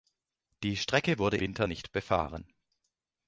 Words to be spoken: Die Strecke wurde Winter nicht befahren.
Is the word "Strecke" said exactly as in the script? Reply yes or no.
yes